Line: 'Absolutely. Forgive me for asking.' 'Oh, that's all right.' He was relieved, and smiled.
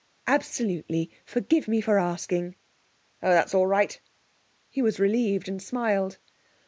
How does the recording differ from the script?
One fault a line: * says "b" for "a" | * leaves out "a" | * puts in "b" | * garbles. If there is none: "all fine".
all fine